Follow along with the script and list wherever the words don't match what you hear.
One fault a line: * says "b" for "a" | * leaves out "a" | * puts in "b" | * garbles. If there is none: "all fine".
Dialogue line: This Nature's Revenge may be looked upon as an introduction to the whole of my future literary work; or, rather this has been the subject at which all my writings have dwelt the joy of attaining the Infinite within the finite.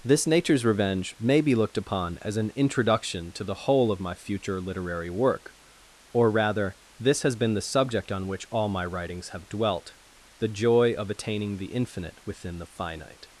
* says "on" for "at"